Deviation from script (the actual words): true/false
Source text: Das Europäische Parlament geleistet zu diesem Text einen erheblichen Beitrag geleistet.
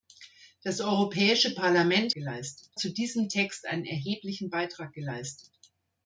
false